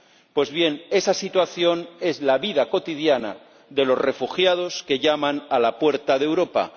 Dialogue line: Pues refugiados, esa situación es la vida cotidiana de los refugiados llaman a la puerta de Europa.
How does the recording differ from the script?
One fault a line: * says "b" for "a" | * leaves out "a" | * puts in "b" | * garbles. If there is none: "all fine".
* says "bien" for "refugiados"
* puts in "que"